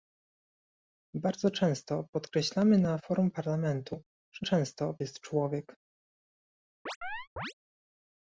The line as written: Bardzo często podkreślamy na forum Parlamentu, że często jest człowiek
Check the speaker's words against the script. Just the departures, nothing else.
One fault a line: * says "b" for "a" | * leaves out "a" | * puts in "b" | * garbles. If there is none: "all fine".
all fine